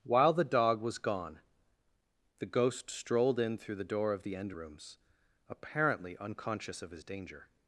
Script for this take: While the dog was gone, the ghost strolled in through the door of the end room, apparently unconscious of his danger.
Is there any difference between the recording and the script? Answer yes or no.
yes